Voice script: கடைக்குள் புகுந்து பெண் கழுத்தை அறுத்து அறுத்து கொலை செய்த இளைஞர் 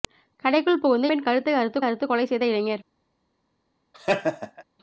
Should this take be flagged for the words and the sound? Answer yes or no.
yes